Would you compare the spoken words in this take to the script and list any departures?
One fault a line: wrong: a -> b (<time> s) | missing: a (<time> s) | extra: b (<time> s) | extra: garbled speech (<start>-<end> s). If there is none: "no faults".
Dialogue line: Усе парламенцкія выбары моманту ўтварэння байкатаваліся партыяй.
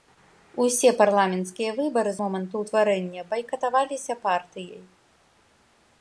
no faults